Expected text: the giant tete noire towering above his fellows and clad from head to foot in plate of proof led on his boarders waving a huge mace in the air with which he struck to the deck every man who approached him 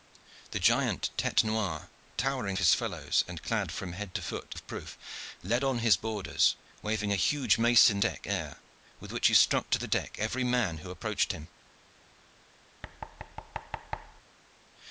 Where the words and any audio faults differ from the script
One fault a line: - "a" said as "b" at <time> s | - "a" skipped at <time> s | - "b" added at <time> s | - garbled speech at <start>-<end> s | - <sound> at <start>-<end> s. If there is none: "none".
- "above" skipped at 2.6 s
- "in plate" skipped at 4.5 s
- "the" said as "deck" at 8.0 s
- thud at 12.8-14.2 s